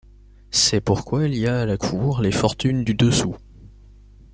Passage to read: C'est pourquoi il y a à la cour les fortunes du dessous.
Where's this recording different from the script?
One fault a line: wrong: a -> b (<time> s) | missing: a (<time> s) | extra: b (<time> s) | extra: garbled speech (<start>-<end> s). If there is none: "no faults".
no faults